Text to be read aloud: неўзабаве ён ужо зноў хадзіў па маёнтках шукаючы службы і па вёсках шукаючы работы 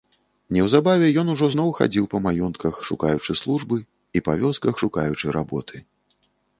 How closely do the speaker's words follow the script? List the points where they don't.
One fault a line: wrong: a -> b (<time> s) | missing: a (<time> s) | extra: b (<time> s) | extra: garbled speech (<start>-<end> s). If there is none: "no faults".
no faults